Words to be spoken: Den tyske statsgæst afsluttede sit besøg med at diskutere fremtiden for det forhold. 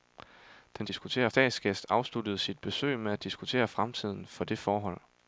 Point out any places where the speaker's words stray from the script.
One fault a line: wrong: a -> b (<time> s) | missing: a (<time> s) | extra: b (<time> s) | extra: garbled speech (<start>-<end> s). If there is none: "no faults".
wrong: tyske -> diskutere (0.9 s)